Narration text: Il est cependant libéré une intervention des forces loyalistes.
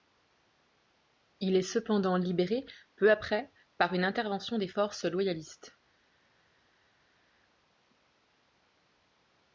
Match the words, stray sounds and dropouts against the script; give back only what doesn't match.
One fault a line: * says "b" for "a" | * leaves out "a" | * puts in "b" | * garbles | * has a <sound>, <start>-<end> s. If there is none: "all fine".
* puts in "peu après par"